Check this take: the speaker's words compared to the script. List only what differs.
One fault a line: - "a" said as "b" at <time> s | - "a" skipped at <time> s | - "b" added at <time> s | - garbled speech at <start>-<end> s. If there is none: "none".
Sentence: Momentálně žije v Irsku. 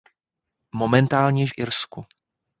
- "žije" skipped at 1.5 s